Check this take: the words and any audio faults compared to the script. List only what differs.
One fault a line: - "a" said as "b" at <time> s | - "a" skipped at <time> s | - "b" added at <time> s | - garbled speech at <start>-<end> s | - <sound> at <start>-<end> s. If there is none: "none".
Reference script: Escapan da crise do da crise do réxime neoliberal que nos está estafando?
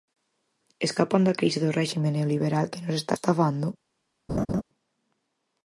- "da crise do" skipped at 1.8 s
- laugh at 4.3-4.6 s